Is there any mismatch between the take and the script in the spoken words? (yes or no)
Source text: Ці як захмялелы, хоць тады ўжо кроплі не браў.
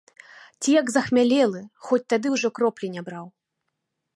no